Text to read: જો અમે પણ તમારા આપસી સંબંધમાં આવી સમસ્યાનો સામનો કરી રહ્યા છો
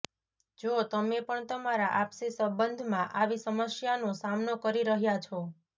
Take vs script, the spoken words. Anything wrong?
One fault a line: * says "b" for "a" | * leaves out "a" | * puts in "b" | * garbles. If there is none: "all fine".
* says "તમે" for "અમે"